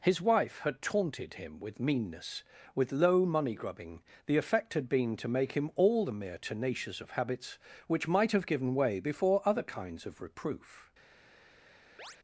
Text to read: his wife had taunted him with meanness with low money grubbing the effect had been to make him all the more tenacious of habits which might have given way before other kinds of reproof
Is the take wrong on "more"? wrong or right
wrong